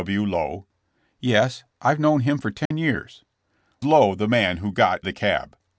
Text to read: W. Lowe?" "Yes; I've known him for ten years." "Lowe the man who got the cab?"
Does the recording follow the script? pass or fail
pass